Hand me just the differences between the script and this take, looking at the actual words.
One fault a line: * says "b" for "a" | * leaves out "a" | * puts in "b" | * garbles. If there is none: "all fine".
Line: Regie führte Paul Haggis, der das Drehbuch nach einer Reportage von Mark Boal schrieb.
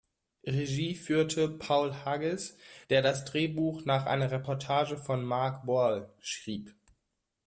all fine